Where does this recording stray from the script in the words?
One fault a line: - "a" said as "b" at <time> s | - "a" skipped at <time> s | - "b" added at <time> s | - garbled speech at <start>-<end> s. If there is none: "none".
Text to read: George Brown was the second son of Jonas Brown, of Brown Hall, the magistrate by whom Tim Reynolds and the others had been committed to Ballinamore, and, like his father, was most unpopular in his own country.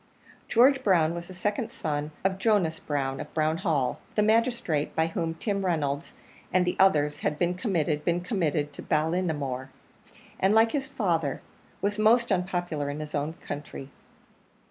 - "been committed" added at 8.0 s